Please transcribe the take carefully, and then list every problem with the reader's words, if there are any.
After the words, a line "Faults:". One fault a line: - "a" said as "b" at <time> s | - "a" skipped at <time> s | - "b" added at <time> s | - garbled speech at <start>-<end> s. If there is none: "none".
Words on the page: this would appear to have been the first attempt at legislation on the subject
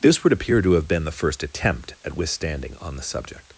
this would appear to have been the first attempt at withstanding on the subject
Faults:
- "legislation" said as "withstanding" at 2.1 s